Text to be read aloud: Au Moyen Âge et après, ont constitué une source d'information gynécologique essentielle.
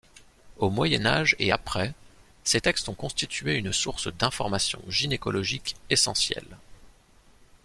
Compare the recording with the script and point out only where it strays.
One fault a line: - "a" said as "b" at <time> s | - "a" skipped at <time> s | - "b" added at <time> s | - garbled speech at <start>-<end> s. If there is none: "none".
- "ces textes" added at 2.5 s